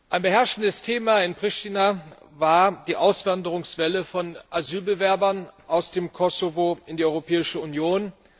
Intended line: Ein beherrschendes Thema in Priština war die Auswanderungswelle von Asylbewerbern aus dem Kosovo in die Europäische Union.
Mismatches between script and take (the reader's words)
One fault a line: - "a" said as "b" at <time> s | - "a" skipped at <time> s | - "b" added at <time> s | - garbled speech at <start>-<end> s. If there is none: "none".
none